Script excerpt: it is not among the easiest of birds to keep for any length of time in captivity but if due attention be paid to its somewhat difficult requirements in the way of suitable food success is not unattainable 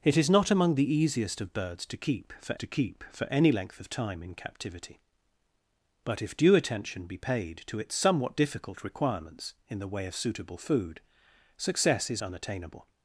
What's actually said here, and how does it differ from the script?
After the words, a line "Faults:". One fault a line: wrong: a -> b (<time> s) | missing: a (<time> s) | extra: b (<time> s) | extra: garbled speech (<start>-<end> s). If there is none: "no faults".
it is not among the easiest of birds to keep for to keep for any length of time in captivity but if due attention be paid to its somewhat difficult requirements in the way of suitable food success is unattainable
Faults:
extra: to keep for (2.5 s)
missing: not (12.2 s)